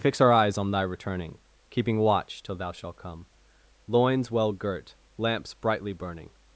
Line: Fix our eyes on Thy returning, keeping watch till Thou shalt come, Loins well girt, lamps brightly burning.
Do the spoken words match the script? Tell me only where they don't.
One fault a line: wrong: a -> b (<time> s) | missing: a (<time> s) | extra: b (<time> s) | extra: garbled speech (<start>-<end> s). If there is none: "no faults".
no faults